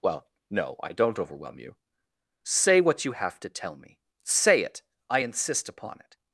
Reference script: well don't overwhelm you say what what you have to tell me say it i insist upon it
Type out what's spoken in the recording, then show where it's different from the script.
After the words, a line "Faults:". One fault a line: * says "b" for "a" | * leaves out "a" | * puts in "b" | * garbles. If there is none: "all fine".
well no i don't overwhelm you say what you have to tell me say it i insist upon it
Faults:
* puts in "no i"
* leaves out "what"